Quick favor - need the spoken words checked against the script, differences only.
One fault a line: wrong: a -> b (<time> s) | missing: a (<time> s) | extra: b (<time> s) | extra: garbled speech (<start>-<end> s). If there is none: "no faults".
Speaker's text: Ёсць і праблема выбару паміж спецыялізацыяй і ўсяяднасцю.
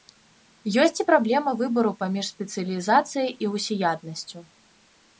no faults